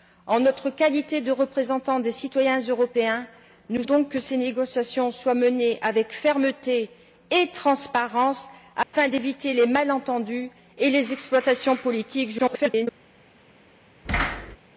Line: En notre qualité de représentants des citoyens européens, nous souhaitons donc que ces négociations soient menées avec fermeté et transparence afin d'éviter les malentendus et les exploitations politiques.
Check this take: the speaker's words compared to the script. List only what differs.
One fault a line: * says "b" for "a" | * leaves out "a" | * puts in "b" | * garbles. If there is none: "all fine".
* leaves out "souhaitons"
* garbles